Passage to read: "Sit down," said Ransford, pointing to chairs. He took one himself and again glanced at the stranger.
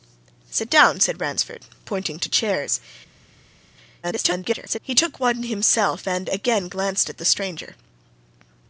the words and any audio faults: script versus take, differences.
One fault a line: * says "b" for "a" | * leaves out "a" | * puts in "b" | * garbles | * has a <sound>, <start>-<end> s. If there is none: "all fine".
* garbles